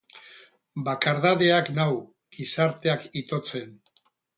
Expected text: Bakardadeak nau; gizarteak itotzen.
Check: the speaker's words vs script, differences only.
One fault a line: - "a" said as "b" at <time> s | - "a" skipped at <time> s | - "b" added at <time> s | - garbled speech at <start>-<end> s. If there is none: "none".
none